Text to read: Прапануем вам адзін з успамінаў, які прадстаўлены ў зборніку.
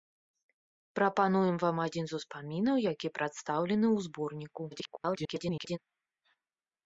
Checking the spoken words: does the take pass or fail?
fail